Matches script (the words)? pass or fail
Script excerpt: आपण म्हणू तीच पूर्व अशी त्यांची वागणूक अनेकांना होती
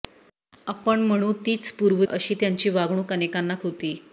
pass